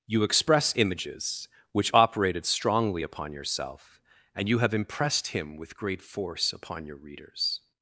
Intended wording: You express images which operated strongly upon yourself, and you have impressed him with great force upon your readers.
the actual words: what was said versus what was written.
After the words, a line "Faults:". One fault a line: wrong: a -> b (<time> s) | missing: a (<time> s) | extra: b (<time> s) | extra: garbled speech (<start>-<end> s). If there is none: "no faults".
You express images which operated strongly upon yourself, and you have impressed him with great force upon your readers.
Faults:
no faults